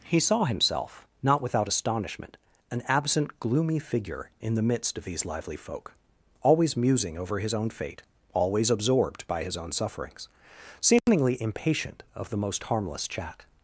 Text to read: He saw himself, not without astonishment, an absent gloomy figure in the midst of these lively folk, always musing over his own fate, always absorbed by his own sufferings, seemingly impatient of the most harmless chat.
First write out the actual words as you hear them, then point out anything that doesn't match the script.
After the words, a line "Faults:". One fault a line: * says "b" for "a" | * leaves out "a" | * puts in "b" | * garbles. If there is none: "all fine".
He saw himself, not without astonishment, an absent gloomy figure in the midst of these lively folk, always musing over his own fate, always absorbed by his own sufferings, seemingly impatient of the most harmless chat.
Faults:
all fine